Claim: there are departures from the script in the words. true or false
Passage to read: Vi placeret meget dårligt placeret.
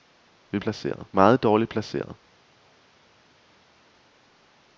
false